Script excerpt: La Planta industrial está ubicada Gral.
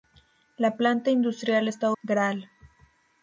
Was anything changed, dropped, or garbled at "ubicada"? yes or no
yes